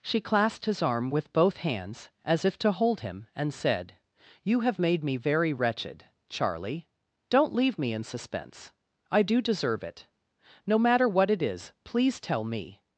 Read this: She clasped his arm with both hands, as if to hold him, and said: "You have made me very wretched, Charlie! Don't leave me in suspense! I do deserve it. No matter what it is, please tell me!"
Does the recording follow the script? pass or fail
pass